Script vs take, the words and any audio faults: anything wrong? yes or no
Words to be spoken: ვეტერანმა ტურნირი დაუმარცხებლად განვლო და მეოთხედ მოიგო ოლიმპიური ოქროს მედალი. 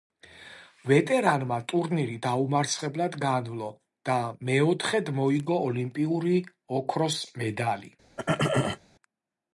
yes